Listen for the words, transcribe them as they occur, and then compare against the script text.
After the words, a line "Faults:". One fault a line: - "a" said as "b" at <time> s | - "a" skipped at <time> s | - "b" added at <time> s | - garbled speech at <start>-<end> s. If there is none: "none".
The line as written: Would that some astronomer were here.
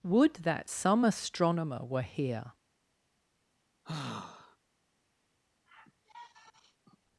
Would that some astronomer were here.
Faults:
none